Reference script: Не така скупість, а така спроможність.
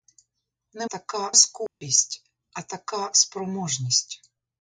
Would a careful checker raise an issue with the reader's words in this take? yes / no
no